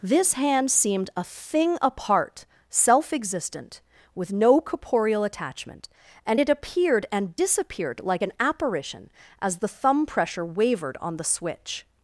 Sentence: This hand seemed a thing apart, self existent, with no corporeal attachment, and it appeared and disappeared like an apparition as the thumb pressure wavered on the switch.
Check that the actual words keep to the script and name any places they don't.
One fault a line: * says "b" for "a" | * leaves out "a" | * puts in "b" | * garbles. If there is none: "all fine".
all fine